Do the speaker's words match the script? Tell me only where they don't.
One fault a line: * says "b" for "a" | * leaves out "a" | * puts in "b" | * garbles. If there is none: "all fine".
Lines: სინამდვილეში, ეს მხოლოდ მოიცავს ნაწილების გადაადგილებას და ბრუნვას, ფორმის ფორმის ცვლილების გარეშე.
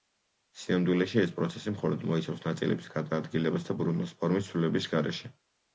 * puts in "პროცესი"
* leaves out "ფორმის"